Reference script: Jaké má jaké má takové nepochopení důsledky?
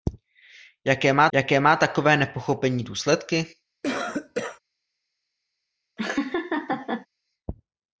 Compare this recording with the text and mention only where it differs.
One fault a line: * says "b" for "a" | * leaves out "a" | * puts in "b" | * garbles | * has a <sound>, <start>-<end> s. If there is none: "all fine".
* has a cough, 3.8-4.6 s
* has a laugh, 6.0-7.1 s